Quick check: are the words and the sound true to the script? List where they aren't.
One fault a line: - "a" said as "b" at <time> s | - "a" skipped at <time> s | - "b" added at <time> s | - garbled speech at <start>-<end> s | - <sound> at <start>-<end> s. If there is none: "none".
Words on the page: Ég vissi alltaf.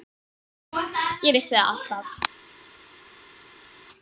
- "það" added at 1.5 s